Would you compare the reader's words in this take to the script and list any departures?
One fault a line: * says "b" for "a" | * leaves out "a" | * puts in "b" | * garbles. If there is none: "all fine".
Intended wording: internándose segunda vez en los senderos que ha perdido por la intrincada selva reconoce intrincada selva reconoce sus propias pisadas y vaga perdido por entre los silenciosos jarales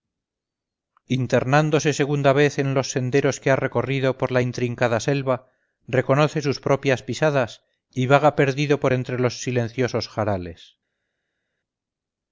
* says "recorrido" for "perdido"
* leaves out "intrincada selva reconoce"